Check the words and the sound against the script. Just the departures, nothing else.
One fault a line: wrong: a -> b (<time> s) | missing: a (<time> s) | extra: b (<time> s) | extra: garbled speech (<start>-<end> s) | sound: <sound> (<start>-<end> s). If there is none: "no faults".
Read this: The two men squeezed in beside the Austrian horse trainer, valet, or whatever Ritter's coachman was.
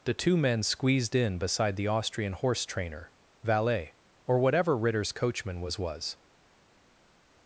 extra: was (5.8 s)